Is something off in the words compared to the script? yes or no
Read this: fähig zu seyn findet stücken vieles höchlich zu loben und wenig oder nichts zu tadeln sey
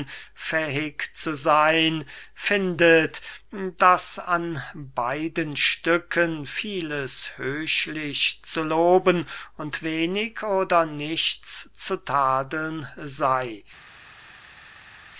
yes